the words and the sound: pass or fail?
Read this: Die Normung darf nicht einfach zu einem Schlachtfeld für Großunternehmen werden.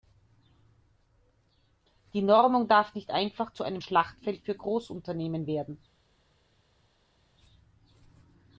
pass